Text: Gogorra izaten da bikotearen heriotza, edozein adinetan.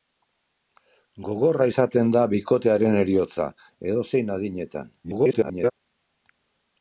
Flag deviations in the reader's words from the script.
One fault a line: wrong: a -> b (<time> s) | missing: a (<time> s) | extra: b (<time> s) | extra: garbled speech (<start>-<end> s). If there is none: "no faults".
extra: garbled speech (5.0-5.7 s)